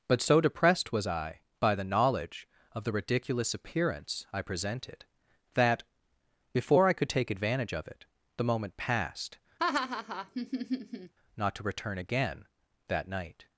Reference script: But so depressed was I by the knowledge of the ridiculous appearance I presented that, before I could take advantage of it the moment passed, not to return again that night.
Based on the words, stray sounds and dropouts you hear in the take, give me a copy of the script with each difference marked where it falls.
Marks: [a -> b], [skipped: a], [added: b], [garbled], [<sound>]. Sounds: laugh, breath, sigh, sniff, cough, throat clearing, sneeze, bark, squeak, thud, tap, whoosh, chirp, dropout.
But so depressed was I by the knowledge of the ridiculous appearance I presented that, before I could take advantage of it the moment passed, [laugh] not to return again that night.